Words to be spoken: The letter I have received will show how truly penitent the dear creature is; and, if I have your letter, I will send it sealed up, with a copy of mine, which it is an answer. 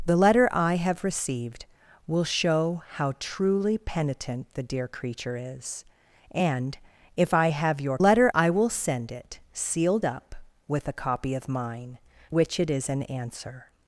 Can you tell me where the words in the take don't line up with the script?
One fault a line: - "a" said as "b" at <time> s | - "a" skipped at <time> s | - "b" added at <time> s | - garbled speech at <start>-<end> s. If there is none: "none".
none